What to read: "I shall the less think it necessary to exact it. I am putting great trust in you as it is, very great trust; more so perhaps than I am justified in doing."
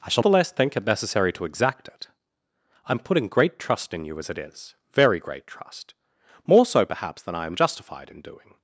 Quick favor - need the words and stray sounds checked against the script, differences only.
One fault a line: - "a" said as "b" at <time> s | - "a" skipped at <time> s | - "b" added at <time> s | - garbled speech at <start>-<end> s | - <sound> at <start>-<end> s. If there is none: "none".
none